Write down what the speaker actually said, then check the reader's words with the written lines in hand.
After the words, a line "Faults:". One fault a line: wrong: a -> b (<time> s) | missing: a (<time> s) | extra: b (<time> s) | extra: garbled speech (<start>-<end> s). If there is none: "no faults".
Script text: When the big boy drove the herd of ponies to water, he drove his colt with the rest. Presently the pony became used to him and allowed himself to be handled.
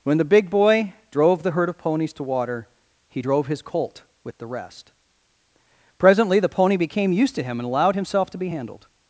When the big boy drove the herd of ponies to water, he drove his colt with the rest. Presently the pony became used to him and allowed himself to be handled.
Faults:
no faults